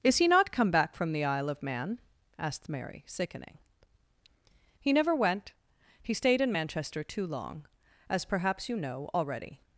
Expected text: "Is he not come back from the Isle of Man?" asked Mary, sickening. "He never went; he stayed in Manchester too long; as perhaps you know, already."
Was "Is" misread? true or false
false